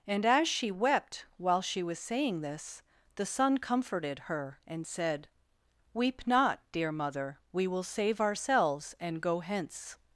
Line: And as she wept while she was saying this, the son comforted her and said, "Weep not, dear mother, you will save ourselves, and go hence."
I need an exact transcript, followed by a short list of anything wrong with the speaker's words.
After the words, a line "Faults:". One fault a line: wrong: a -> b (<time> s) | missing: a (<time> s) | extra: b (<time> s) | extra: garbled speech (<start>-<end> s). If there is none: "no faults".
And as she wept while she was saying this, the son comforted her and said, "Weep not, dear mother, we will save ourselves, and go hence."
Faults:
wrong: you -> we (7.5 s)